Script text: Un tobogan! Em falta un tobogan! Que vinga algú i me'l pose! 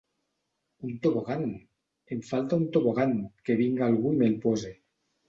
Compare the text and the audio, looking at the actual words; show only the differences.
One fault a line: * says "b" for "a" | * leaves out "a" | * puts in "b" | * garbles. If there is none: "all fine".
all fine